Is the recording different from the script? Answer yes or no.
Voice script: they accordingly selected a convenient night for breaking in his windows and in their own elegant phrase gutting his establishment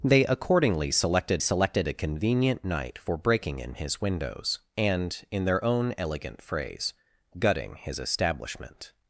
yes